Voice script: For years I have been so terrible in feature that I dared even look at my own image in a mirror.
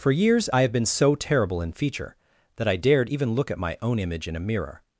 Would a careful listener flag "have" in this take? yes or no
no